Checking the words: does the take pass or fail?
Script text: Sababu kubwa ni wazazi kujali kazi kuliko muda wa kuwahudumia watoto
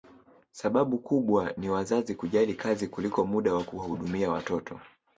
pass